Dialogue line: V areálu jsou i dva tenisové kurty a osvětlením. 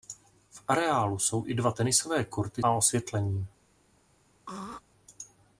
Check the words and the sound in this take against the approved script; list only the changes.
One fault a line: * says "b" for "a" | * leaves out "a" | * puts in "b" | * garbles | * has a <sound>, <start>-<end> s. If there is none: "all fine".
* has a throat clearing, 4.5-4.8 s